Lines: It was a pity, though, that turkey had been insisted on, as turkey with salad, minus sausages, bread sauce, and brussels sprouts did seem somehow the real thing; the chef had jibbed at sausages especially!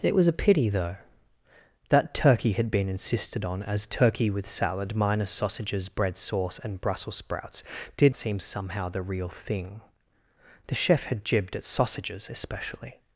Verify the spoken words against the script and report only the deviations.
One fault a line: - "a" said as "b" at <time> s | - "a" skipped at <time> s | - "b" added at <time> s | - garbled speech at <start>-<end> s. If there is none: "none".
none